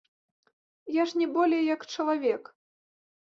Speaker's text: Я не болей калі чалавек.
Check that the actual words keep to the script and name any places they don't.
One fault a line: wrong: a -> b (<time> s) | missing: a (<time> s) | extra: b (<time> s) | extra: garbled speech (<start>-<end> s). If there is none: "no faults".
extra: ж (1.1 s)
wrong: калі -> як (1.7 s)